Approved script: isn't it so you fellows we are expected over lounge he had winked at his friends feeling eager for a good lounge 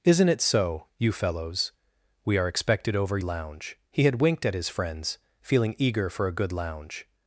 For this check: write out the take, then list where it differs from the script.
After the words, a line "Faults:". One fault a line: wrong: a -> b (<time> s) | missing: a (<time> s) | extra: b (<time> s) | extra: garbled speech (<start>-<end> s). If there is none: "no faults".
isn't it so you fellows we are expected over lounge he had winked at his friends feeling eager for a good lounge
Faults:
no faults